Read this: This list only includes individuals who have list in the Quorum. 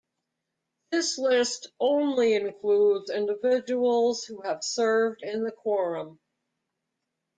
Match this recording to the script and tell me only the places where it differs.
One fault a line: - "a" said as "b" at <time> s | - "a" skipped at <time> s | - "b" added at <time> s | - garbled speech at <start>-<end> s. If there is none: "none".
- "list" said as "served" at 4.6 s